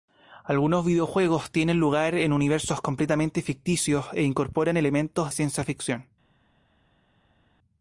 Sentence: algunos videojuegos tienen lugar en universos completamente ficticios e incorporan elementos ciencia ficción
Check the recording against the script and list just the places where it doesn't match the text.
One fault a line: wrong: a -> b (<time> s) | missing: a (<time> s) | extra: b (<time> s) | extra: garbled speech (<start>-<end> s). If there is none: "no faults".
no faults